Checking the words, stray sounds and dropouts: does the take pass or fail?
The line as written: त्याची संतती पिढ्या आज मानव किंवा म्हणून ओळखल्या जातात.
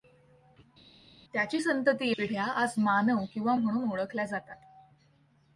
pass